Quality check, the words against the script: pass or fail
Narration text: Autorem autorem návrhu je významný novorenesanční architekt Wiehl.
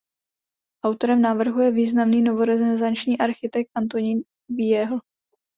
fail